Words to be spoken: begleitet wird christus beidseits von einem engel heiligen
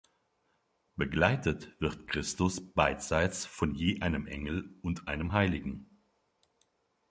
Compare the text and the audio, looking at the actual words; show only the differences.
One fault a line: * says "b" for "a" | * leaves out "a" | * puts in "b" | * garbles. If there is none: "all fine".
* puts in "je"
* puts in "und einem"